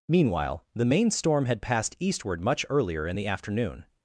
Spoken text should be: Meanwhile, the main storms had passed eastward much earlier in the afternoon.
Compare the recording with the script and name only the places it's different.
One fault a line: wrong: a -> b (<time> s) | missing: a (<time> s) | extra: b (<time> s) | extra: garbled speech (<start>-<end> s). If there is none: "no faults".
wrong: storms -> storm (1.1 s)